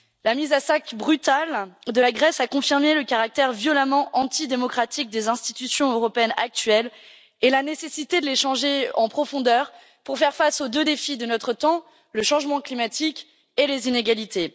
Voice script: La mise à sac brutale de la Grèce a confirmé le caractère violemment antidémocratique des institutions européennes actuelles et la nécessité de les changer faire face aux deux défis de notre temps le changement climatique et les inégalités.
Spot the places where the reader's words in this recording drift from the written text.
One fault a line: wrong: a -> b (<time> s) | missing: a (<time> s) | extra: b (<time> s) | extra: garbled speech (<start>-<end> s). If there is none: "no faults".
extra: en profondeur pour (8.9 s)